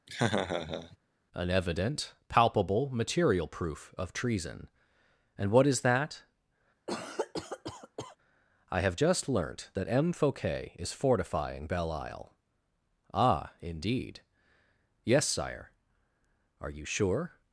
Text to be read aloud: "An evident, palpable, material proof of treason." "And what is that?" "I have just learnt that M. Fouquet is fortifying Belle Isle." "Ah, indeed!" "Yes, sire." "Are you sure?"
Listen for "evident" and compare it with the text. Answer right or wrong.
right